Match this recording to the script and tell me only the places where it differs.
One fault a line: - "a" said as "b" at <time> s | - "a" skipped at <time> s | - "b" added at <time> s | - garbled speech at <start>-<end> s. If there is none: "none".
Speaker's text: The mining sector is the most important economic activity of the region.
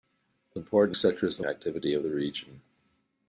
- "mining" said as "important" at 0.5 s
- "most important economic" skipped at 1.4 s